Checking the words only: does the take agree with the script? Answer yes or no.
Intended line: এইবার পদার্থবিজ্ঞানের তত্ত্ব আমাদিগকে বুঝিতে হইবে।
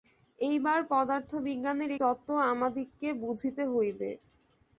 yes